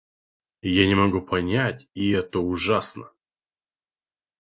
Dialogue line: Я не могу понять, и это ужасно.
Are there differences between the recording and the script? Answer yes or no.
no